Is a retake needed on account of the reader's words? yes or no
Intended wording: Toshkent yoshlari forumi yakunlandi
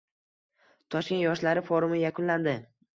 no